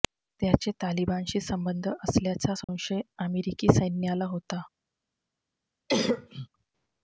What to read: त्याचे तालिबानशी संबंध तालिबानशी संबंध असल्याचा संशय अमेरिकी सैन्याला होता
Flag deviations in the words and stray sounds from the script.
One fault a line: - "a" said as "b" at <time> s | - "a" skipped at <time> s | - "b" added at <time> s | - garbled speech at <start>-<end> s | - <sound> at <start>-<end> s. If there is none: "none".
- "तालिबानशी संबंध" skipped at 1.9 s
- dropout at 2.6-2.7 s
- cough at 5.9-6.5 s